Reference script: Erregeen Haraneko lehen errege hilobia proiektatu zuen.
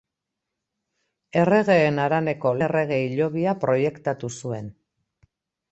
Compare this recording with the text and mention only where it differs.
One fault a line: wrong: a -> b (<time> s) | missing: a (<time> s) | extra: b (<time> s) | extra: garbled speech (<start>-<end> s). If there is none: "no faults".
missing: lehen (2.5 s)